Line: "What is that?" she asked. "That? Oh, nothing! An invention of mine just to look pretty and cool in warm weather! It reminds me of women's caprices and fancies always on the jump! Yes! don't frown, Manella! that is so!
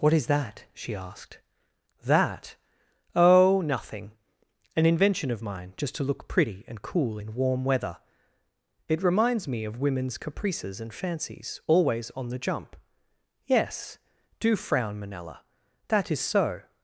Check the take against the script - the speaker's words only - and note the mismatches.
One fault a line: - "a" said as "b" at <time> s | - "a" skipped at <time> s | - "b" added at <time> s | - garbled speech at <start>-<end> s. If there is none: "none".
- "don't" said as "do" at 14.4 s